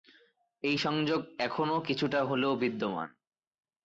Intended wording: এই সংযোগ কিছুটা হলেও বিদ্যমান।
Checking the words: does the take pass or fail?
fail